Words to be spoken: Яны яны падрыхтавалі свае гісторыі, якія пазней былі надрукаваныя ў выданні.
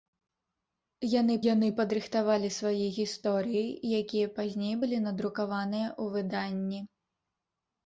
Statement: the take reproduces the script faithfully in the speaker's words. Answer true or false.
true